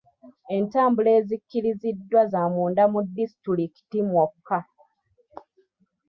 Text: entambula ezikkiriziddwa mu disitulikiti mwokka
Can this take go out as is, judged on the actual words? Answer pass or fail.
fail